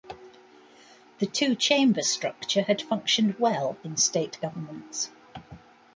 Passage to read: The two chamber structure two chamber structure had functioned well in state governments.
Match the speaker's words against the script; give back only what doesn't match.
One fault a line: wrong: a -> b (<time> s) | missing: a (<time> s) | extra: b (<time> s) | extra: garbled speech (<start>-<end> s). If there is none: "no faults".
missing: two chamber structure (2.6 s)